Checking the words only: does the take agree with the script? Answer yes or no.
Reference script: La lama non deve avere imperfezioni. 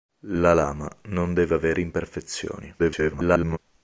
no